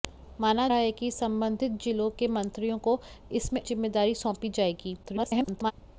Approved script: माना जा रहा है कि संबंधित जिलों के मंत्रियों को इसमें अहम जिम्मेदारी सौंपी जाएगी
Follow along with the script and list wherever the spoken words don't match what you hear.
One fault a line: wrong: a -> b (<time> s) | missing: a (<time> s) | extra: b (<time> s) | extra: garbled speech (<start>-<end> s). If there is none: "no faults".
missing: जा (0.7 s)
missing: अहम (3.6 s)
extra: garbled speech (5.0-5.7 s)